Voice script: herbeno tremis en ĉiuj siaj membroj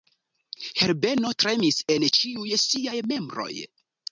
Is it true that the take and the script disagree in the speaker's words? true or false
false